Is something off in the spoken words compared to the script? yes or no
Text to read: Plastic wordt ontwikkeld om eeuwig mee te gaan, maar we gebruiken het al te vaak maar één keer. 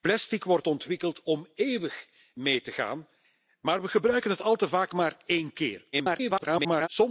yes